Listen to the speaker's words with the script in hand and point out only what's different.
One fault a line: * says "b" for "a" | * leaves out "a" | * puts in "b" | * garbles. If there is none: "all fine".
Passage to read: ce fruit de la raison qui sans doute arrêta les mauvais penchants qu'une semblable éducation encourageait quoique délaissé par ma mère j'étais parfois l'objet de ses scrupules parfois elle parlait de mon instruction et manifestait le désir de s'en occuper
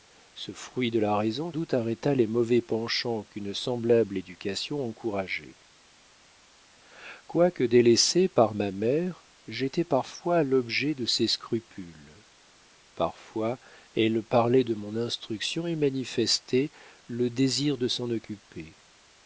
* leaves out "qui sans"